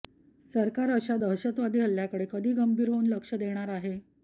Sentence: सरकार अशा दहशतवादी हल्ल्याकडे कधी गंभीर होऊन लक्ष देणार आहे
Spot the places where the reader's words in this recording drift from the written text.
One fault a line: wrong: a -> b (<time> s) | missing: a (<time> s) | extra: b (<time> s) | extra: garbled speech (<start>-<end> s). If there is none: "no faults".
no faults